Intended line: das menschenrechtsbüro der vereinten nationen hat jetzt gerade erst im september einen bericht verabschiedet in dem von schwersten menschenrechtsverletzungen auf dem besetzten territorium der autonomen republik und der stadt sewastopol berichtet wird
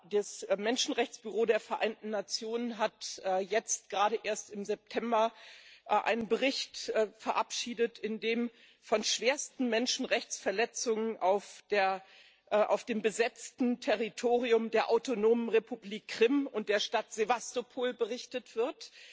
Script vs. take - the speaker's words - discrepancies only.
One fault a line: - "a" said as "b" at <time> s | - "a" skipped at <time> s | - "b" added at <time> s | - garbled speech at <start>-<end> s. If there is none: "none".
- "krim" added at 16.1 s